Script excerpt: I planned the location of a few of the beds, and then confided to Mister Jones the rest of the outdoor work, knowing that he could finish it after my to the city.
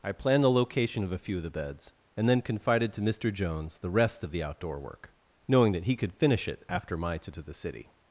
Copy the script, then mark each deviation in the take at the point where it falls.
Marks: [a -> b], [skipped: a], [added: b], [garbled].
I planned the location of a few of the beds, and then confided to Mister Jones the rest of the outdoor work, knowing that he could finish it after my to the city.